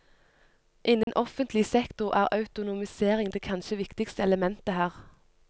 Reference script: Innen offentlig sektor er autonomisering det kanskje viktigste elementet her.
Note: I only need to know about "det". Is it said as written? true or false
true